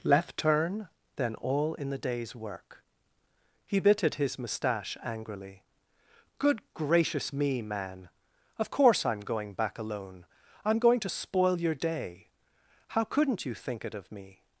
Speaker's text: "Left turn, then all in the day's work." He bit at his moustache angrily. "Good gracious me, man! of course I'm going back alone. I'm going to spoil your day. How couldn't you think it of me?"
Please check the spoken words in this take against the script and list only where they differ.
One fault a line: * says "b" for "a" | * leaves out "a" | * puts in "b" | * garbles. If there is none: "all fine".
all fine